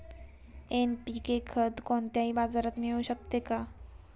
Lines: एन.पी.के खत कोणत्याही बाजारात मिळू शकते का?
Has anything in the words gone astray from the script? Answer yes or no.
no